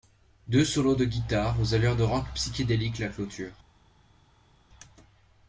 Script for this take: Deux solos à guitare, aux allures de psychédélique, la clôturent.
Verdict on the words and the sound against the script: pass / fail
fail